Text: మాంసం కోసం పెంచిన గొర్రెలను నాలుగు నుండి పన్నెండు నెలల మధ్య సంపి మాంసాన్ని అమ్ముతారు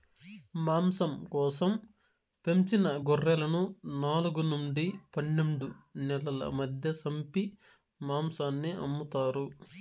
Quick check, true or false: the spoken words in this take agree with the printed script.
true